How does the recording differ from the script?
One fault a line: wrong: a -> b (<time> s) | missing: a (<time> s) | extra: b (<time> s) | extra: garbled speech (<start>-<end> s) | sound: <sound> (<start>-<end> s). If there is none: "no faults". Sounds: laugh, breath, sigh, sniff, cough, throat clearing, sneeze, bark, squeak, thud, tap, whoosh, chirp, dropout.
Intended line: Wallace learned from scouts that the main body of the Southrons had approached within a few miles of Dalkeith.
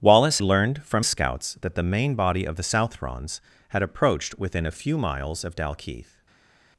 no faults